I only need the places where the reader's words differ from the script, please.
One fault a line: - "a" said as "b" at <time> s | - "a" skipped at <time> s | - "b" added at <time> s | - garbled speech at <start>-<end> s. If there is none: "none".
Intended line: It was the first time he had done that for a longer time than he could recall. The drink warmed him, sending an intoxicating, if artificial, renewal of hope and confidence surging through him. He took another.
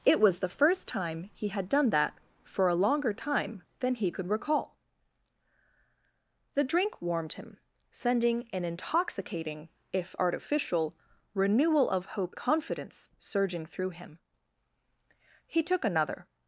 - "and" skipped at 12.3 s